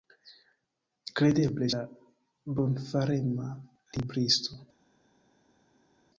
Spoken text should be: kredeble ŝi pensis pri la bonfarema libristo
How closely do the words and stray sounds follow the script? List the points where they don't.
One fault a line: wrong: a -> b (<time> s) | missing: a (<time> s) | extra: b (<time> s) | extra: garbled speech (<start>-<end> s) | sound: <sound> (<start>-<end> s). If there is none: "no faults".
missing: ŝi pensis pri (1.7 s)